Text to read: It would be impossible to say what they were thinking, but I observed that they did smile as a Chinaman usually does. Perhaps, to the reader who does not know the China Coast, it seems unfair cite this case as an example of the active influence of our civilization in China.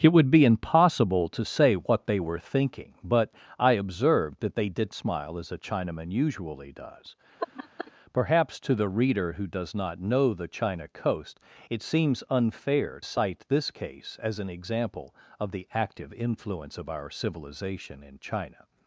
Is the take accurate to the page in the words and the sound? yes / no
no